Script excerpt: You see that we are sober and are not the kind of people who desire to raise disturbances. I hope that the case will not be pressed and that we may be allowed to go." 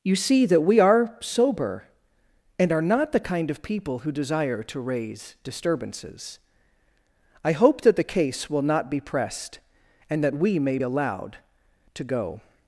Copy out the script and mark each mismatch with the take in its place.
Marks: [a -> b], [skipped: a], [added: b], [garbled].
You see that we are sober and are not the kind of people who desire to raise disturbances. I hope that the case will not be pressed and that we may [skipped: be] allowed to go."